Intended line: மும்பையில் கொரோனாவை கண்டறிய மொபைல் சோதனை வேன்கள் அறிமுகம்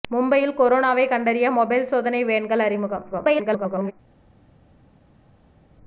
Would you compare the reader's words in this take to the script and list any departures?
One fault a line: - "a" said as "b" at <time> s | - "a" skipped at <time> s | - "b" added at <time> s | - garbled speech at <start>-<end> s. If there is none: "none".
- garbled speech at 3.1-3.9 s